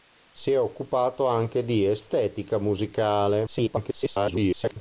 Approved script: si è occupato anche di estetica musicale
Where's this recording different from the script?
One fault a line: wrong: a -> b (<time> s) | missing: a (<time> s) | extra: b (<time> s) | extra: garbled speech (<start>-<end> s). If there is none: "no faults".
extra: garbled speech (3.5-4.8 s)